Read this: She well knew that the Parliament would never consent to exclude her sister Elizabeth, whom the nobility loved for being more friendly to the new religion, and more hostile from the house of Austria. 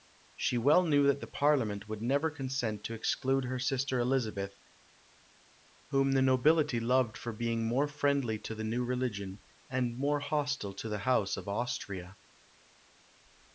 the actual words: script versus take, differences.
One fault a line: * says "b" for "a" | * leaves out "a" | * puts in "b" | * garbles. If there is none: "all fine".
* says "to" for "from"